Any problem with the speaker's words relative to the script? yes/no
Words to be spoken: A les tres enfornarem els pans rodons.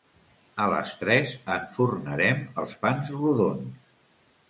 no